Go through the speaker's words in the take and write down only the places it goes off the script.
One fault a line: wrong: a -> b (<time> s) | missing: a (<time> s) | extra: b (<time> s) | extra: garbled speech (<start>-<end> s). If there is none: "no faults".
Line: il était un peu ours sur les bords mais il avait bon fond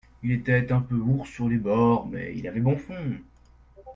no faults